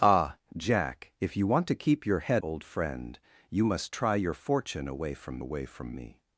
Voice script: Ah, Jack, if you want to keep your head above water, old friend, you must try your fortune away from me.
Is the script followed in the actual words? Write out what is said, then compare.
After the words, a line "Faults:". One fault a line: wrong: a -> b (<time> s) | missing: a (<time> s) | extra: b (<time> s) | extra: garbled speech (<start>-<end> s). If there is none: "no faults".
Ah, Jack, if you want to keep your head old friend, you must try your fortune away from away from me.
Faults:
missing: above water (2.4 s)
extra: away from (5.4 s)